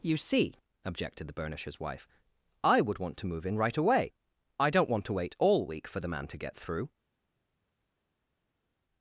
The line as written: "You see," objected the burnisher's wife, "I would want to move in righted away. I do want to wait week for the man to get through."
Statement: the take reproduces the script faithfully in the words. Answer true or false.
false